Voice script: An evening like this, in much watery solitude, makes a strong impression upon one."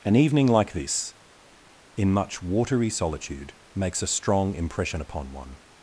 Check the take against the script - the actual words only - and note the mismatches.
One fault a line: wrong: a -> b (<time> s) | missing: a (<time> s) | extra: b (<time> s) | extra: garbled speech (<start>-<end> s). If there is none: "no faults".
no faults